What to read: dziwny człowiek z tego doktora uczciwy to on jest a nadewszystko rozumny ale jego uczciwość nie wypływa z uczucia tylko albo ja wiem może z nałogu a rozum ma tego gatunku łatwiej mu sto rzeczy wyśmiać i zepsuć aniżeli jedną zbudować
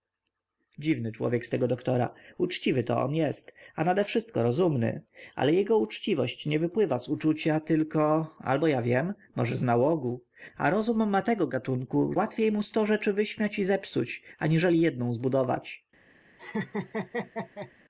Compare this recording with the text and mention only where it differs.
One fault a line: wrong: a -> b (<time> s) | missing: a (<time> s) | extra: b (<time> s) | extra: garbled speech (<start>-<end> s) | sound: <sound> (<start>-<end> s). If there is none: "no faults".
sound: laugh (16.4-17.7 s)